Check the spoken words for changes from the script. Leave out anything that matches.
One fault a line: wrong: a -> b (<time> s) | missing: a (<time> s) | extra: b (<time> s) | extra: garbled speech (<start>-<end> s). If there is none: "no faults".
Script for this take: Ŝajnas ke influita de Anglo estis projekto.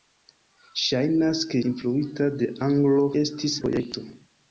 no faults